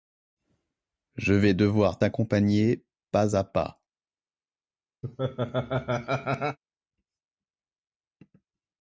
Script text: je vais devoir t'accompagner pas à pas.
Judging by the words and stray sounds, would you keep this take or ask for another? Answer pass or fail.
fail